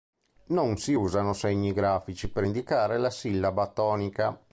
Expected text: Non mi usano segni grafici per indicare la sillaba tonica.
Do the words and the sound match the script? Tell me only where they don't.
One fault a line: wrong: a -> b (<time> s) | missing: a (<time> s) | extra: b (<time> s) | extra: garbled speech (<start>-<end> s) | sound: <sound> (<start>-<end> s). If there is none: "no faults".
wrong: mi -> si (0.8 s)